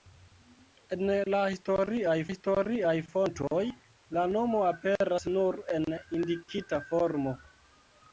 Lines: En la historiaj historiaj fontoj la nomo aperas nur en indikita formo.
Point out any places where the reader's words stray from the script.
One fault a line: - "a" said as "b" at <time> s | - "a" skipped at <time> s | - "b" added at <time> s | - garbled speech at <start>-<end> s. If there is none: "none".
none